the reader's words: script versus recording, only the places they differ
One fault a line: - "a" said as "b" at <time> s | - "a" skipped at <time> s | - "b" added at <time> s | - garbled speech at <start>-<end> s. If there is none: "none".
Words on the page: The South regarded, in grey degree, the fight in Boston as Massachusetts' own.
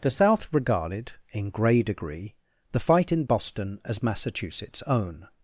none